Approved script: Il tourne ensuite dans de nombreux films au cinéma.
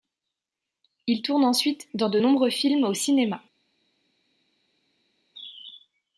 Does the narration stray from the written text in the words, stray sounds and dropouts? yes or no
no